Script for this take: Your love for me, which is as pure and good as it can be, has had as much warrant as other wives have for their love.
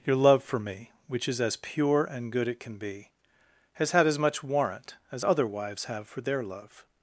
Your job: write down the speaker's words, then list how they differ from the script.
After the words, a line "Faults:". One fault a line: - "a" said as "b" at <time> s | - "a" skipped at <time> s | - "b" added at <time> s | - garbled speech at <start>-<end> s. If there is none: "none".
Your love for me, which is as pure and good it can be, has had as much warrant as other wives have for their love.
Faults:
- "as" skipped at 2.5 s